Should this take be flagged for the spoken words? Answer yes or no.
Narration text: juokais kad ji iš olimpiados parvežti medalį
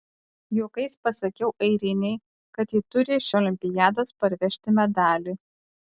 yes